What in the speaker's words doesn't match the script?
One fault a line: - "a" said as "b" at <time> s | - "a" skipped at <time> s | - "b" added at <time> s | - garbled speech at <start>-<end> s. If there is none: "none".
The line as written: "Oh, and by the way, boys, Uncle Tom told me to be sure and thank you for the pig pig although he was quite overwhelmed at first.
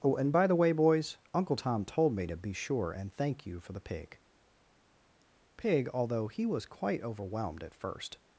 none